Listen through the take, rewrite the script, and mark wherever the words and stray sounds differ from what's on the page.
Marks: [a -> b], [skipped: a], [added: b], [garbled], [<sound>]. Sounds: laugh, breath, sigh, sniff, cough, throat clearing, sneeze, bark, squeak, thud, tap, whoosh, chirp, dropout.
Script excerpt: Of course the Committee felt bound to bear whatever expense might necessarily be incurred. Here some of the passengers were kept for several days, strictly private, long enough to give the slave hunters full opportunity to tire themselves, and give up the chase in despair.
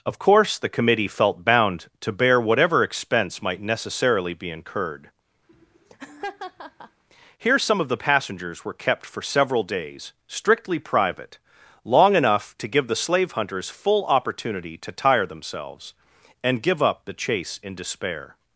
Of course the Committee felt bound to bear whatever expense might necessarily be incurred. [laugh] Here some of the passengers were kept for several days, strictly private, long enough to give the slave hunters full opportunity to tire themselves, and give up the chase in despair.